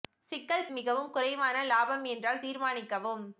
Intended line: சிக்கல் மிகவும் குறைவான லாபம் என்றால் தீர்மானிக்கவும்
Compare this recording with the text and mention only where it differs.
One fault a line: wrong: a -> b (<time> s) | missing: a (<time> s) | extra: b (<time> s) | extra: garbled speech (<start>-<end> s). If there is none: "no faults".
no faults